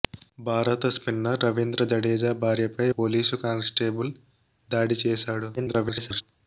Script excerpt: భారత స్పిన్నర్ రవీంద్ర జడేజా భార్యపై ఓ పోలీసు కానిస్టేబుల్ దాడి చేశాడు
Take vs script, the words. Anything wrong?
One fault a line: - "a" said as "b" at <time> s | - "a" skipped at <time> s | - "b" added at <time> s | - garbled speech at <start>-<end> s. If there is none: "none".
- "ఓ" skipped at 2.9 s
- garbled speech at 5.6-6.2 s